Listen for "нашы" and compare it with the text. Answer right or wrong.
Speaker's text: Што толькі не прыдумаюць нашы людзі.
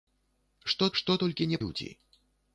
wrong